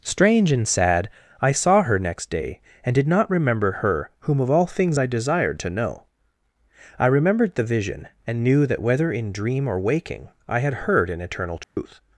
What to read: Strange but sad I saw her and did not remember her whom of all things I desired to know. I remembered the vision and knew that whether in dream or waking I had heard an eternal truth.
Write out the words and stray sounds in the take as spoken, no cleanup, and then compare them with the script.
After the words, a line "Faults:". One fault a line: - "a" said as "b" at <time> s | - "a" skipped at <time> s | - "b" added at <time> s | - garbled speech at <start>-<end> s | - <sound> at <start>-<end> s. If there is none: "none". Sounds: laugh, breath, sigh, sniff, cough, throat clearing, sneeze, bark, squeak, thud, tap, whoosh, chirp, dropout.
Strange and sad I saw her next day and did not remember her whom of all things I desired to know. I remembered the vision and knew that whether in dream or waking I had heard an eternal truth.
Faults:
- "but" said as "and" at 0.5 s
- "next day" added at 2.0 s
- dropout at 11.6-11.8 s